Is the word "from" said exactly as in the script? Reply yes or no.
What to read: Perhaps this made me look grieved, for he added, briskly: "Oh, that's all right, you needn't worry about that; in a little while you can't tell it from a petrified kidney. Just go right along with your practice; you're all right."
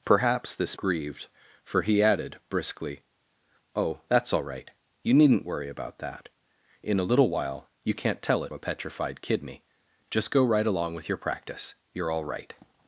no